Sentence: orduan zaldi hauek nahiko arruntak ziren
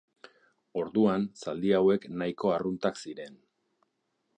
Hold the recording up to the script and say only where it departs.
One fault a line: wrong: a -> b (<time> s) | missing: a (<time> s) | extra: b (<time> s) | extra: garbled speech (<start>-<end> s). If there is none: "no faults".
no faults